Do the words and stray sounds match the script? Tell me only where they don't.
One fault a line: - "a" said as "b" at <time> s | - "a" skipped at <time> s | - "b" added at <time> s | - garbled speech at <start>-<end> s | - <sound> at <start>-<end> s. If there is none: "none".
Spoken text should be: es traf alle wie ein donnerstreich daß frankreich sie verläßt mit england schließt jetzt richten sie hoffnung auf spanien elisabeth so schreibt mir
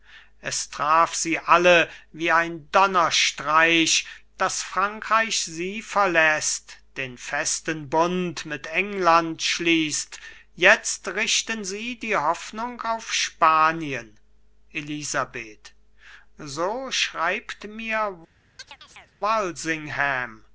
- "sie" added at 1.1 s
- "den festen bund" added at 7.0 s
- "die" added at 12.0 s
- chirp at 18.6-19.1 s